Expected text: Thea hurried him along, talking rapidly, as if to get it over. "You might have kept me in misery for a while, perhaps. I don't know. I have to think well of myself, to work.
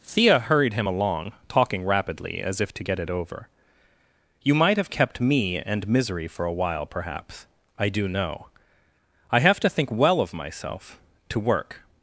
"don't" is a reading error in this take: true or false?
true